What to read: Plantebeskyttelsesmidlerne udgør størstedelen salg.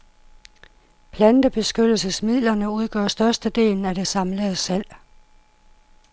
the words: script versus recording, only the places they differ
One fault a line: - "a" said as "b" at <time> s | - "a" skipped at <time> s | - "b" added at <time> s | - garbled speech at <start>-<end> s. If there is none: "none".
- "af det samlede" added at 3.9 s